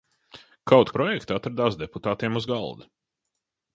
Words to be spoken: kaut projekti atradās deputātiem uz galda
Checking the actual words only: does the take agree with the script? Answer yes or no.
yes